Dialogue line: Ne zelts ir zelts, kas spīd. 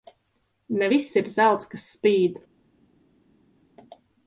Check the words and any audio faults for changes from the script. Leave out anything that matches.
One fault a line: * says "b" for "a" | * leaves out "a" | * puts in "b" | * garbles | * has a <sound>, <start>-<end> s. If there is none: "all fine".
* says "viss" for "zelts"